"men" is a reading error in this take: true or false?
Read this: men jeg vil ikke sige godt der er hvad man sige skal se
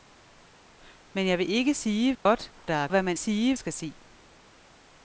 false